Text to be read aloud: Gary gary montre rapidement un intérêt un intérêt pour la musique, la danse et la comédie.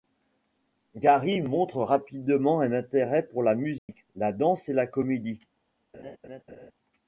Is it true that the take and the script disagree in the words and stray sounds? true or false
true